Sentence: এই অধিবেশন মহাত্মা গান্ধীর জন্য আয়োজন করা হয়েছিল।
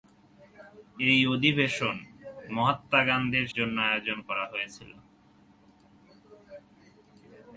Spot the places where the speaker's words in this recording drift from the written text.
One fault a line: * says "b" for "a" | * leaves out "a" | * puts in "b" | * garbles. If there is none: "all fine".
all fine